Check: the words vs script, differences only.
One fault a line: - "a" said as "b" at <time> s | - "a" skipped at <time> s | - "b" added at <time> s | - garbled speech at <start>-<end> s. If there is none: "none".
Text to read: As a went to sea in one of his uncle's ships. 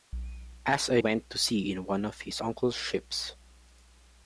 none